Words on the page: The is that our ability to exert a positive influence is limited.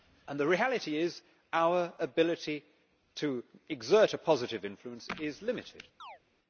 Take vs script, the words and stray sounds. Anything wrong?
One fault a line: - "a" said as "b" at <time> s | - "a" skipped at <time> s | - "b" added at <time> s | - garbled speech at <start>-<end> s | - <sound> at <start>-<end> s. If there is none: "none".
- "reality" added at 0.5 s
- chirp at 6.0-6.2 s